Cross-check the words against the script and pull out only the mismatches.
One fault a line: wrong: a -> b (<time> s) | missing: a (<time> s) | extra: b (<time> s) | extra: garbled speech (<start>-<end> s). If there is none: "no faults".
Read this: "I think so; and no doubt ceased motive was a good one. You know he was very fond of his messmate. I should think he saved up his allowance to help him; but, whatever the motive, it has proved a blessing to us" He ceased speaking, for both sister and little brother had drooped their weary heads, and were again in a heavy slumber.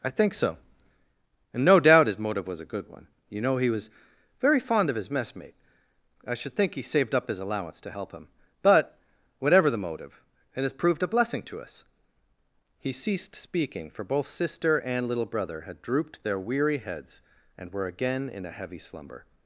wrong: ceased -> his (2.1 s)